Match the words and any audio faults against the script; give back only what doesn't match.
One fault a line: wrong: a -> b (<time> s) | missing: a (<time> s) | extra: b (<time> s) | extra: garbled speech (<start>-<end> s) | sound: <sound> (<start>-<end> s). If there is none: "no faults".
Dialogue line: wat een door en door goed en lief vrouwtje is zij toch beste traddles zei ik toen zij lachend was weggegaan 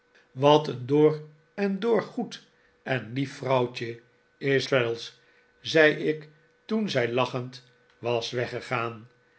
missing: zij toch beste (4.6 s)